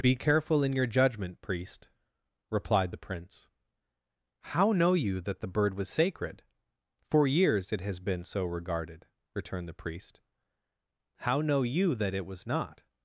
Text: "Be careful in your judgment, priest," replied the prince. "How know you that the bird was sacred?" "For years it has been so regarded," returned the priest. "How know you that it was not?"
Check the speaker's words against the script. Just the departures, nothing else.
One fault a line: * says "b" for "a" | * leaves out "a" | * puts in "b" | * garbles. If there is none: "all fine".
all fine